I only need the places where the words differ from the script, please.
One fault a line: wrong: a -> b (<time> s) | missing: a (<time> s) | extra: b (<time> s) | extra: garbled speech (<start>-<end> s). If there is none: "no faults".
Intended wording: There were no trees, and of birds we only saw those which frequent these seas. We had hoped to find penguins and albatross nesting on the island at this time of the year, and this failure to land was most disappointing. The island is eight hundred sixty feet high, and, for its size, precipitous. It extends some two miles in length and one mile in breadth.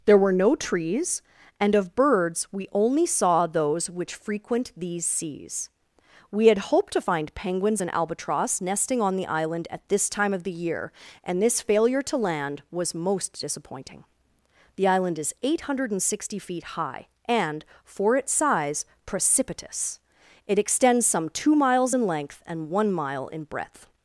no faults